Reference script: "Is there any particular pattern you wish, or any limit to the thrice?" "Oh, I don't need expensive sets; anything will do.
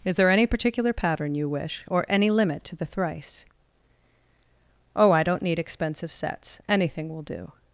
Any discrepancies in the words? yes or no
no